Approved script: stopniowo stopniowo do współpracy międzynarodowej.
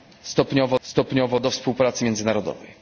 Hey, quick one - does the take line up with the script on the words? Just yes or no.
yes